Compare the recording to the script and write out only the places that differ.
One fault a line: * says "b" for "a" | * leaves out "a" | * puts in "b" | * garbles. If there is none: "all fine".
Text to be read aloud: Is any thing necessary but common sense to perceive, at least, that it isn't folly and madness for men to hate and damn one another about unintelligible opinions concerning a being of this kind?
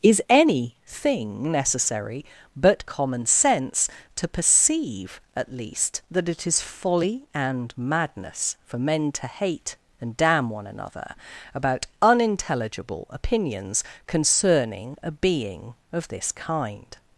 * says "is" for "isn't"